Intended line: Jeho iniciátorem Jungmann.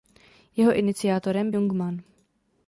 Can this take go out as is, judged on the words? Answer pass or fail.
pass